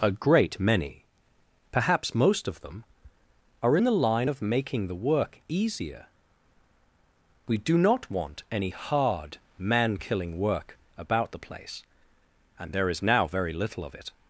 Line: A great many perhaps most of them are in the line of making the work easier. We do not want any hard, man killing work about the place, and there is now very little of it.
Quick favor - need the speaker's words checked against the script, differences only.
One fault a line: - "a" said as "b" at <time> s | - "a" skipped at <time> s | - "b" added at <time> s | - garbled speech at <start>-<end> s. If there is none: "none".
none